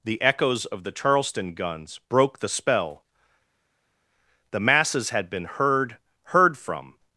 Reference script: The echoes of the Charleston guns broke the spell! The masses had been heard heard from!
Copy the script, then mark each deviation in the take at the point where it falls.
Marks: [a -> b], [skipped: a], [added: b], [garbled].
The echoes of the Charleston guns broke the spell! The masses had been heard heard from!